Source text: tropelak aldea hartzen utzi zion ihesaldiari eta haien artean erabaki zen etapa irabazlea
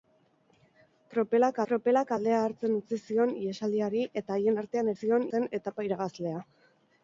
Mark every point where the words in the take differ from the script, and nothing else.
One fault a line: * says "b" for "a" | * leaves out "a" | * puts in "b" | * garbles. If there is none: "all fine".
* puts in "tropelak"
* says "zion" for "erabaki"